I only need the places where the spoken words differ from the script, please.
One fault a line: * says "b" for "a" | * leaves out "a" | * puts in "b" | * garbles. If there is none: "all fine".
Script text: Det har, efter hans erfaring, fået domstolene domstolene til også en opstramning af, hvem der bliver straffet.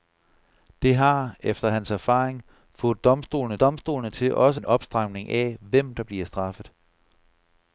all fine